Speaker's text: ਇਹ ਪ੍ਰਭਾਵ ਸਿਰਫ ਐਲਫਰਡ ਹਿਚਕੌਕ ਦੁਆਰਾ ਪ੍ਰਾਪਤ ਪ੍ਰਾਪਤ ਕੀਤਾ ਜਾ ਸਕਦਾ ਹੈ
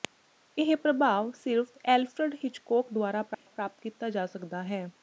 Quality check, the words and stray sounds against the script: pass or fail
fail